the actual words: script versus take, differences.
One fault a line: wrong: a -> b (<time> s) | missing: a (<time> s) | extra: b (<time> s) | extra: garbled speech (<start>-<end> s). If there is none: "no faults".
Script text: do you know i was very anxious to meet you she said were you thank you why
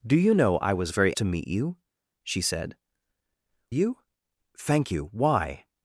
missing: anxious (1.1 s)
missing: were (2.8 s)